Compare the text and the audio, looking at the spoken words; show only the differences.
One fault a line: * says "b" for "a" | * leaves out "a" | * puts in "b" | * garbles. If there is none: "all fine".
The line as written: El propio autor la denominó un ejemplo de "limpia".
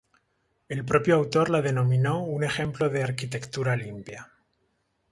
* puts in "arquitectura"